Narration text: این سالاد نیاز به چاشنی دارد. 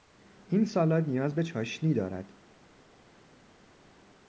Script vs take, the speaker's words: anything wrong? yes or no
no